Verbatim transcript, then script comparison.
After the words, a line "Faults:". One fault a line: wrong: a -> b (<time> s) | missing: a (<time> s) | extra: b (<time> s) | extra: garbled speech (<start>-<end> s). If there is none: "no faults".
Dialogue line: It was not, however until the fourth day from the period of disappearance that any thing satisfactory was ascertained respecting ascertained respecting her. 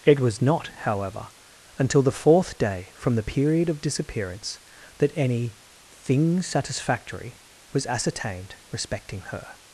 It was not, however until the fourth day from the period of disappearance that any thing satisfactory was ascertained respecting her.
Faults:
missing: ascertained respecting (9.2 s)